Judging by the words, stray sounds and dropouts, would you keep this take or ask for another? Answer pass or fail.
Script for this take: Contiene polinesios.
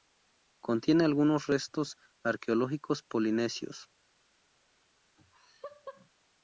fail